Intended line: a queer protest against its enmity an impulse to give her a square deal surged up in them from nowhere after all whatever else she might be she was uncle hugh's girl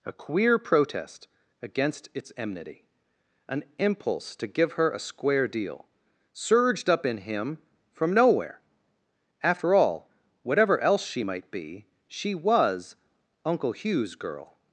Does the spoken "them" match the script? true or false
false